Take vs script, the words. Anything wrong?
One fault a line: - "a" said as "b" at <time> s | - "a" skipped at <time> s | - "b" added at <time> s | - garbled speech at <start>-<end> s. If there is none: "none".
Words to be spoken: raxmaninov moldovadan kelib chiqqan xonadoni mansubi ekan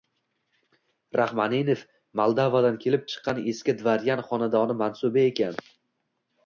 - "eski dvoryan" added at 3.5 s